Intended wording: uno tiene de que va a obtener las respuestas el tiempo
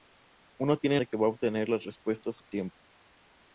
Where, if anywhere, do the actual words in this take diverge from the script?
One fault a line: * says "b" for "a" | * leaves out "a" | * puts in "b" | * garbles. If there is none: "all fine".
all fine